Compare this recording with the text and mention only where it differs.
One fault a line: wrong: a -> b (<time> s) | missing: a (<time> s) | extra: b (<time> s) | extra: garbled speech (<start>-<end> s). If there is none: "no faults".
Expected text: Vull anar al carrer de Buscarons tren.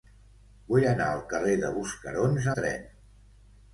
no faults